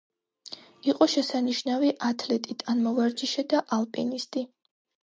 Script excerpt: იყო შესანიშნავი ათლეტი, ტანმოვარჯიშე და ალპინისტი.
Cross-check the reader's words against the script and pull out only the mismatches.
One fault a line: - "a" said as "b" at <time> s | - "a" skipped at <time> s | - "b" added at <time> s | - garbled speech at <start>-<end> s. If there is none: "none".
none